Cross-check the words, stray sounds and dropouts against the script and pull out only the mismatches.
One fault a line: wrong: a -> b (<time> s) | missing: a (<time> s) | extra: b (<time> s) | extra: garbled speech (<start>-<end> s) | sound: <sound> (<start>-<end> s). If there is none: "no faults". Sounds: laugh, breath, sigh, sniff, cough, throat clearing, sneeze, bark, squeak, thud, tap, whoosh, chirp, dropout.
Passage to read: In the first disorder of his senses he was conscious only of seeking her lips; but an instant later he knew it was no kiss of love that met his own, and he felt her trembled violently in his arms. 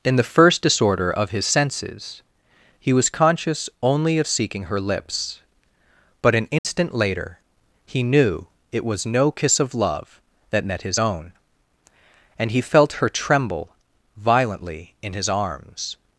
sound: dropout (6.6-6.6 s)
wrong: trembled -> tremble (13.1 s)